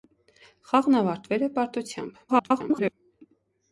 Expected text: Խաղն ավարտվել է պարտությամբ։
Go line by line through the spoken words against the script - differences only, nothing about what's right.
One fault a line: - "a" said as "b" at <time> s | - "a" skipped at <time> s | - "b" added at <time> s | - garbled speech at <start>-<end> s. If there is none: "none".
- garbled speech at 2.3-2.9 s